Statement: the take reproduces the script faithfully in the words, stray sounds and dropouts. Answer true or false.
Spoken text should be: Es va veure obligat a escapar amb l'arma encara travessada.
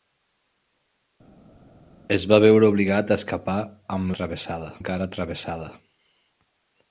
false